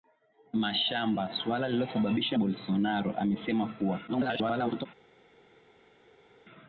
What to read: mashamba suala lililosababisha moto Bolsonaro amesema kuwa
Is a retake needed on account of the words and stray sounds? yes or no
yes